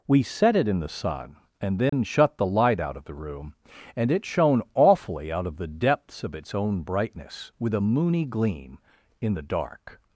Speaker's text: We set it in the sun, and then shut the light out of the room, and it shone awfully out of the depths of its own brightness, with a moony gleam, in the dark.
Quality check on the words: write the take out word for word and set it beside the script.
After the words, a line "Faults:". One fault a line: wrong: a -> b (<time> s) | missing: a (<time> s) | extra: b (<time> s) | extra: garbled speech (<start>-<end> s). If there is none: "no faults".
We set it in the sun, and then shut the light out of the room, and it shone awfully out of the depths of its own brightness, with a moony gleam, in the dark.
Faults:
no faults